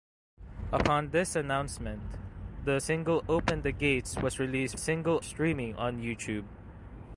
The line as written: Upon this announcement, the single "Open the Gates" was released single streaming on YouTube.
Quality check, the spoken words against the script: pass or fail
pass